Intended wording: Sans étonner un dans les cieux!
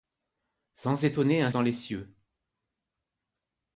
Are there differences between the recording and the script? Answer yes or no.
no